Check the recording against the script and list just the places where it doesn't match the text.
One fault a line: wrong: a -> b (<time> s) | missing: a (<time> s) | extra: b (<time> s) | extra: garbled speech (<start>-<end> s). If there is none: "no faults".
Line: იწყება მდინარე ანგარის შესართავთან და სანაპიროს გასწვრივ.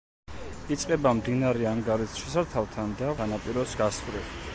no faults